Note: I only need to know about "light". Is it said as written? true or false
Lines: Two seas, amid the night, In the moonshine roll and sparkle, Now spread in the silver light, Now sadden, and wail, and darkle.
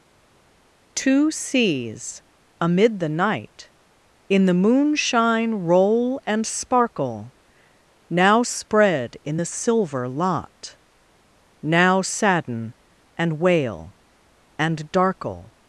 false